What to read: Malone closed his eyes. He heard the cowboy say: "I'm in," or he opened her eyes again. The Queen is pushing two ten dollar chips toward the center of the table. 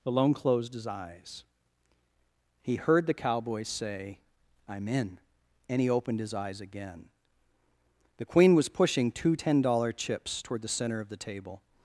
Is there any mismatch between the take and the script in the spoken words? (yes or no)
yes